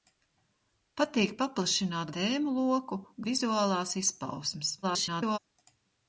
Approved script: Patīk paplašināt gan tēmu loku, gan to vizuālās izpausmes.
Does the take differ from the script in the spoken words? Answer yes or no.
yes